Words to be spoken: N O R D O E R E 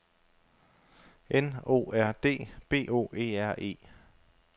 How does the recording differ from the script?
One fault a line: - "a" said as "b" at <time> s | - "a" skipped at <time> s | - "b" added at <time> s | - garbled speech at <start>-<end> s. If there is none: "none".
- "B" added at 2.7 s